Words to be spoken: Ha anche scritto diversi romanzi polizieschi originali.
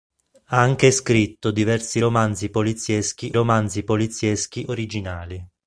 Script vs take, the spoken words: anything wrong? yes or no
yes